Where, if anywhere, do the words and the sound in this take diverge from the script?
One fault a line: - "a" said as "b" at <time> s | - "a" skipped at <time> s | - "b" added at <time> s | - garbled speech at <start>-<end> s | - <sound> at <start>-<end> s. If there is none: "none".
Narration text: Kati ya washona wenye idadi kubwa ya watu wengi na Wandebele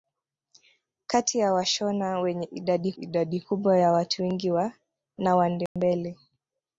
- "idadi" added at 3.0 s
- dropout at 5.7-5.8 s